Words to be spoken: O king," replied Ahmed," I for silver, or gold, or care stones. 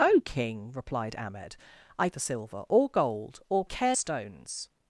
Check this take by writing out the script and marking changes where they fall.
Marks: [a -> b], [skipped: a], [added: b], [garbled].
O king," replied Ahmed," I for silver, or gold, or care stones.